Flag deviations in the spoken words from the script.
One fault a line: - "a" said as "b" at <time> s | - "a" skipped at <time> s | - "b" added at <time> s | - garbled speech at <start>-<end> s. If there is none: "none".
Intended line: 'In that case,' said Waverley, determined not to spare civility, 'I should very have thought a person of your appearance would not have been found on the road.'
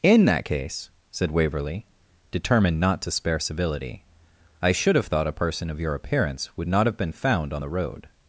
- "very" skipped at 5.0 s